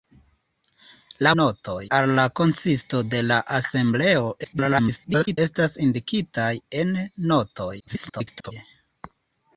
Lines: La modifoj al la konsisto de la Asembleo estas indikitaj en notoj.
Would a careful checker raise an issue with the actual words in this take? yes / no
yes